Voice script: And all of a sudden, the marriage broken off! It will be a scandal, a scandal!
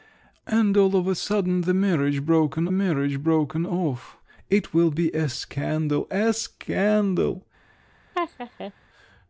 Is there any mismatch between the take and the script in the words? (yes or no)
yes